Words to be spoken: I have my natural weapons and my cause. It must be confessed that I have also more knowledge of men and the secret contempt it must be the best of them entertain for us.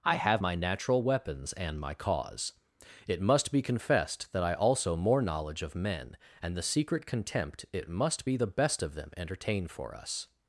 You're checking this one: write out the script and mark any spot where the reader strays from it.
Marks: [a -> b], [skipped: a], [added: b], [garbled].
I have my natural weapons and my cause. It must be confessed that I [skipped: have] also more knowledge of men and the secret contempt it must be the best of them entertain for us.